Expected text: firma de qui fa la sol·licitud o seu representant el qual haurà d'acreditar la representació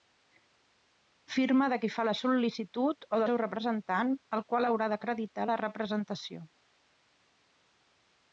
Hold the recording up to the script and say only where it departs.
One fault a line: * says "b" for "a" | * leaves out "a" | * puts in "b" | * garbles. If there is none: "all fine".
all fine